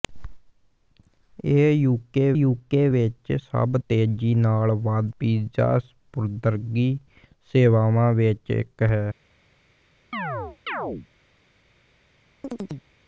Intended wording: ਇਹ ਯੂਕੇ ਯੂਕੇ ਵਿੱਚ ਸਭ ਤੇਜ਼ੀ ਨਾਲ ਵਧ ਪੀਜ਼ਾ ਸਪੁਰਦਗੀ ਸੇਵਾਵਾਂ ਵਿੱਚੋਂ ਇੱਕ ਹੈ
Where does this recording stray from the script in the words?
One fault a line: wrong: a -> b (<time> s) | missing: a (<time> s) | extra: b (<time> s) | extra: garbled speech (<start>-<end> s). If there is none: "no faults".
no faults